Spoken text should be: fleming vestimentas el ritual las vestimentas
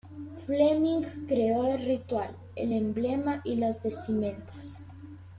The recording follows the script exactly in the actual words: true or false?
false